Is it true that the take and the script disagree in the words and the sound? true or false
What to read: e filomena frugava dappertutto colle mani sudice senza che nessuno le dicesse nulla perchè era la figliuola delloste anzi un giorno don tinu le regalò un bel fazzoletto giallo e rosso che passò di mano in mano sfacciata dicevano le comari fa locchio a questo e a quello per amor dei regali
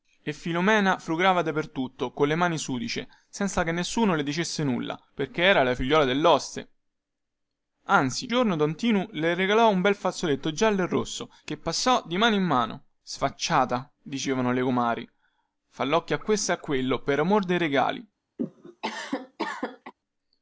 true